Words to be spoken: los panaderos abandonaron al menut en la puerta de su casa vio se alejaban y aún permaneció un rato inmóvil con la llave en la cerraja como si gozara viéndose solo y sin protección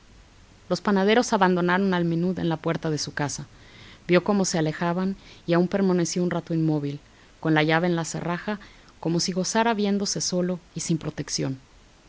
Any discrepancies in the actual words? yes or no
yes